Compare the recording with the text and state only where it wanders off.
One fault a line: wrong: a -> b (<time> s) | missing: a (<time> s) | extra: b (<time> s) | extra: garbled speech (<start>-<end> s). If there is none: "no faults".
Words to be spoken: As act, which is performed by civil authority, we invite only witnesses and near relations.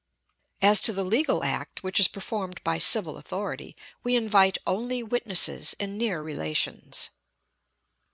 extra: to the legal (0.8 s)